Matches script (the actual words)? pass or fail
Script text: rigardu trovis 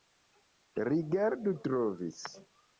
pass